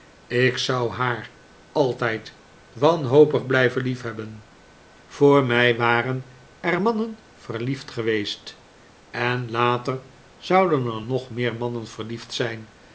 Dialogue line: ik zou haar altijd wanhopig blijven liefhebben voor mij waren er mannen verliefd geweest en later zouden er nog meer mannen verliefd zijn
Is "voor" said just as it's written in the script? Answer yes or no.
yes